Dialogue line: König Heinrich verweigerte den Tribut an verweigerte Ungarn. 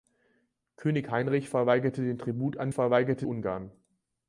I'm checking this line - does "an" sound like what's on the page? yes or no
yes